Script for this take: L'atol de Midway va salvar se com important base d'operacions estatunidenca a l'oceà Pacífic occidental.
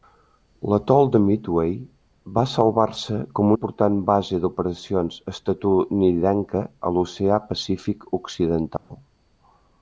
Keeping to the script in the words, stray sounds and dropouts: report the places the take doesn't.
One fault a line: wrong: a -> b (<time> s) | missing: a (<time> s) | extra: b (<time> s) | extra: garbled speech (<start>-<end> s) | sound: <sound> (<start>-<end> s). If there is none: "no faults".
sound: dropout (8.8-8.9 s)